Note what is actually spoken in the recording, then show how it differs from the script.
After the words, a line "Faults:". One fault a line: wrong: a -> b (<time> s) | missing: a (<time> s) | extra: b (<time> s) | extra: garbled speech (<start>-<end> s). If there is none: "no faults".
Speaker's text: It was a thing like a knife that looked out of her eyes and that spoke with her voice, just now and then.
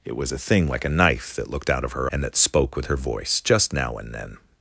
It was a thing like a knife that looked out of her and that spoke with her voice, just now and then.
Faults:
missing: eyes (2.1 s)